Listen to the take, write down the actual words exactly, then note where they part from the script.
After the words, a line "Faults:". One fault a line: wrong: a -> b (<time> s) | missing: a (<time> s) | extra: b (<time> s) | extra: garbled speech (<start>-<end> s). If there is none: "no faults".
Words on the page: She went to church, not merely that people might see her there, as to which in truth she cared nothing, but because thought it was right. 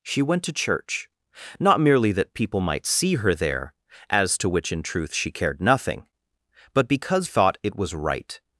She went to church, not merely that people might see her there, as to which in truth she cared nothing, but because thought it was right.
Faults:
no faults